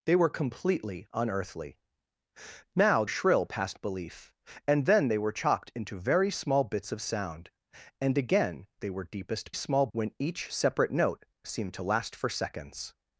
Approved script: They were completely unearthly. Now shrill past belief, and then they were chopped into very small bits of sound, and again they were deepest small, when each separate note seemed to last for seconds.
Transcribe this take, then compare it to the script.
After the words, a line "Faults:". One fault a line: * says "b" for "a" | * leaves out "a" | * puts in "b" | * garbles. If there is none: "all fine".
They were completely unearthly. Now shrill past belief, and then they were chopped into very small bits of sound, and again they were deepest small, when each separate note seemed to last for seconds.
Faults:
all fine